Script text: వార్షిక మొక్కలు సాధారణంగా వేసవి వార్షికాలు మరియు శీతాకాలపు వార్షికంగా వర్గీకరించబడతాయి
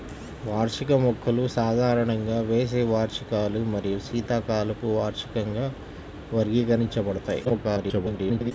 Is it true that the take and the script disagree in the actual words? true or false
true